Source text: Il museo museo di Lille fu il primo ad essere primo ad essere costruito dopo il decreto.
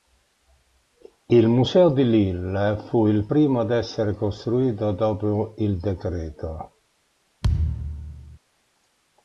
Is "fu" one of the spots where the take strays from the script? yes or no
no